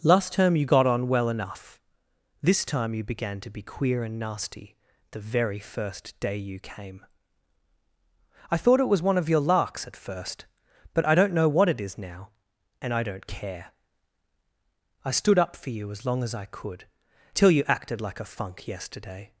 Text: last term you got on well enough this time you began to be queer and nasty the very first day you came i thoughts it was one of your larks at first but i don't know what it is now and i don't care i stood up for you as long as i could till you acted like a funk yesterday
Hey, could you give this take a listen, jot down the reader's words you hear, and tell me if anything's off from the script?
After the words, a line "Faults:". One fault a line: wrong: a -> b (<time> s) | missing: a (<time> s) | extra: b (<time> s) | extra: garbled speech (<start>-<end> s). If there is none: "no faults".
last term you got on well enough this time you began to be queer and nasty the very first day you came i thought it was one of your larks at first but i don't know what it is now and i don't care i stood up for you as long as i could till you acted like a funk yesterday
Faults:
wrong: thoughts -> thought (8.6 s)